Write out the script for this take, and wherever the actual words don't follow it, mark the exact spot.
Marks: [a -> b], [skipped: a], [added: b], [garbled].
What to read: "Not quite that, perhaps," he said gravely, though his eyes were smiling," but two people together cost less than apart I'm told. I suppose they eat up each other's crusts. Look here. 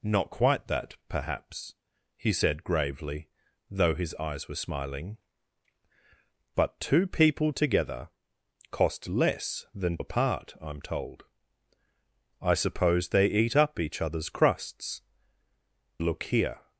"Not quite that, perhaps," he said gravely, though his eyes were smiling," but two people together cost less than apart I'm told. I suppose they eat up each other's crusts. Look here.